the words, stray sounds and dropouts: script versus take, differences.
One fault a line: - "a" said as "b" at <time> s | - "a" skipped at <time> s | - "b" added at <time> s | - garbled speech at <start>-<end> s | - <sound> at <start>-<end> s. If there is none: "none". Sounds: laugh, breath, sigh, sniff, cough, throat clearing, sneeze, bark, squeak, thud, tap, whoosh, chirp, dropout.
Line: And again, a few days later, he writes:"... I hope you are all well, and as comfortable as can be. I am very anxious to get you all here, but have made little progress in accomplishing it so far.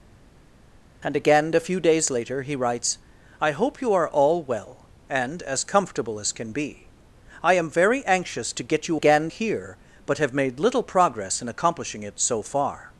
- "all" said as "again" at 8.9 s